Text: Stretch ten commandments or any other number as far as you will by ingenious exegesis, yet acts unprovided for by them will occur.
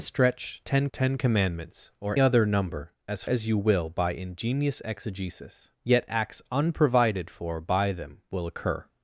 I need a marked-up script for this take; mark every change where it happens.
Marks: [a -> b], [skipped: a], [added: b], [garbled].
Stretch ten [added: ten] commandments or [skipped: any] other number as [skipped: far] as you will by ingenious exegesis, yet acts unprovided for by them will occur.